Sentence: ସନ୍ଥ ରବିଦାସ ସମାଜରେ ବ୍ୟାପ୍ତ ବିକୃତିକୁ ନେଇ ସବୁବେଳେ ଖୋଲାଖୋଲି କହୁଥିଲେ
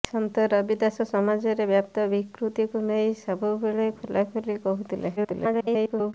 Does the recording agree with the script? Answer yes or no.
no